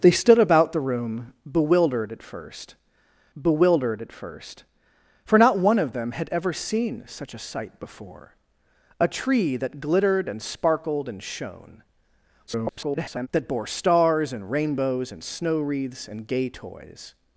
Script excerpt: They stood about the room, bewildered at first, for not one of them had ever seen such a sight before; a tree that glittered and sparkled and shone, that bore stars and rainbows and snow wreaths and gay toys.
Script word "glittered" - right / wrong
right